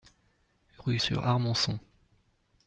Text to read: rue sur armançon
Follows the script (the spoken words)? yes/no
yes